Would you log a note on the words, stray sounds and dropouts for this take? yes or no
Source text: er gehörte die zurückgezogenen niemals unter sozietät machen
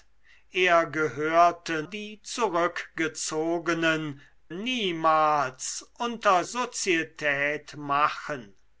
no